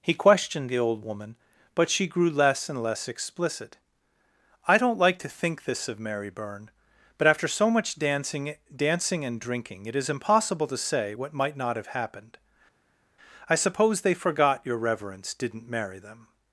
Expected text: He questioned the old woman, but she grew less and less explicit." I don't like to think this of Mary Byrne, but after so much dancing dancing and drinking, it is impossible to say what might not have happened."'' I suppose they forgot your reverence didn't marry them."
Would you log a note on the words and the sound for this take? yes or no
no